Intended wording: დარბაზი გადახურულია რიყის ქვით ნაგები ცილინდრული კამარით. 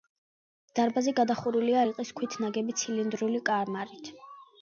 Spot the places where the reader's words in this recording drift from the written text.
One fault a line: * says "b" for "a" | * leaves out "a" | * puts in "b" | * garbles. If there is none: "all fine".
all fine